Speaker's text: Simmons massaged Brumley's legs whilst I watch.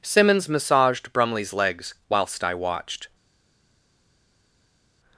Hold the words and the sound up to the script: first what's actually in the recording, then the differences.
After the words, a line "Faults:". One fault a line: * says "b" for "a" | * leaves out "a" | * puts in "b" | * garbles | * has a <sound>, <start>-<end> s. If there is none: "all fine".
Simmons massaged Brumley's legs whilst I watched.
Faults:
* says "watched" for "watch"